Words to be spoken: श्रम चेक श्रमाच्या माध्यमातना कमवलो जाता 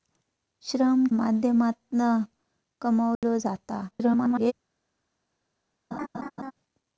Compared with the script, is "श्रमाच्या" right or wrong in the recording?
wrong